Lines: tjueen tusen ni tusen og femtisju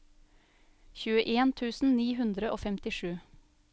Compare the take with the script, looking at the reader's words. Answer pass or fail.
fail